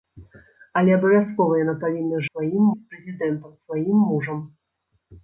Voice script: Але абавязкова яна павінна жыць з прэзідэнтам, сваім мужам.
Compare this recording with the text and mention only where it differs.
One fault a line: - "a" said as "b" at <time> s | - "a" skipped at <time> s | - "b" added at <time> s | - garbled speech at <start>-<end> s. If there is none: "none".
- "жыць" said as "сваім" at 2.3 s